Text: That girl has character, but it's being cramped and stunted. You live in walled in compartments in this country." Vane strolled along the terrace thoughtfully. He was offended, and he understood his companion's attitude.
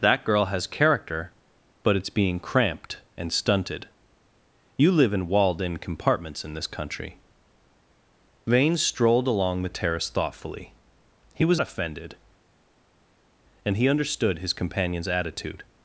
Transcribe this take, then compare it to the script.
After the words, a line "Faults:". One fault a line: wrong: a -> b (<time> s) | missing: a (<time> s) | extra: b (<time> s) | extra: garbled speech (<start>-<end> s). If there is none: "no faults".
That girl has character, but it's being cramped and stunted. You live in walled in compartments in this country." Vane strolled along the terrace thoughtfully. He was offended, and he understood his companion's attitude.
Faults:
no faults